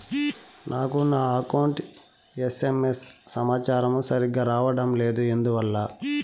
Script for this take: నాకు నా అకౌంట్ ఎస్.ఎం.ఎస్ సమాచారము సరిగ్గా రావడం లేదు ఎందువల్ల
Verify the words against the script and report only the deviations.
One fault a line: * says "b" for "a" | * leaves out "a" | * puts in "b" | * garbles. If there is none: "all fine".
all fine